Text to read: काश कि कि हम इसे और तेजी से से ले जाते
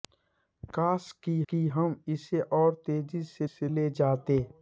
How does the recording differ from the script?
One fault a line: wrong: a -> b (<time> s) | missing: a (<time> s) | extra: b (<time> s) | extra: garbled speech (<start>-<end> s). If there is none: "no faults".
no faults